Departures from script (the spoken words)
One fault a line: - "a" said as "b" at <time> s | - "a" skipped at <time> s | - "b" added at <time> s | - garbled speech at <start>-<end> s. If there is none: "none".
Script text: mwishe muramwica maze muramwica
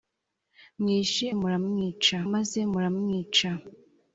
none